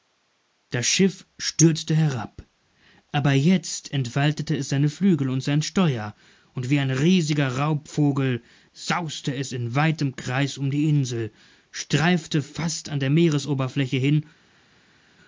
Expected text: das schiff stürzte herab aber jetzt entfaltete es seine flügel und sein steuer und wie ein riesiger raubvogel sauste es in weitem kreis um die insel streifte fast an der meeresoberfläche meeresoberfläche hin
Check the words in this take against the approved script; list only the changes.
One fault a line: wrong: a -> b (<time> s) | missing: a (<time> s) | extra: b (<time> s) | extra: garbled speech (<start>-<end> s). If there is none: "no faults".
missing: meeresoberfläche (14.0 s)